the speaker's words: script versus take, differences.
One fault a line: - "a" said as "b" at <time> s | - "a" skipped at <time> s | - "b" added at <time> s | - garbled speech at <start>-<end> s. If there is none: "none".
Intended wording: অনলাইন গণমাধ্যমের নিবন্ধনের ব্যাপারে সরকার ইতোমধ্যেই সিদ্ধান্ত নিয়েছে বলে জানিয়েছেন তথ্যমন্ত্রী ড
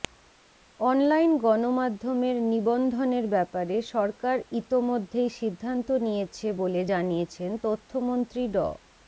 none